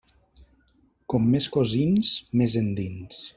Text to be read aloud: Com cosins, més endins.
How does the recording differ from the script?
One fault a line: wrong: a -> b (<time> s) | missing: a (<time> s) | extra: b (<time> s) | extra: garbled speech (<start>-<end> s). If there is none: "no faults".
extra: més (1.4 s)